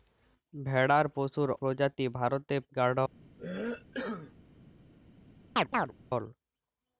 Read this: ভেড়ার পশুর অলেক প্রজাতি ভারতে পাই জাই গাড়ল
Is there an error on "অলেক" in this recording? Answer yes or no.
yes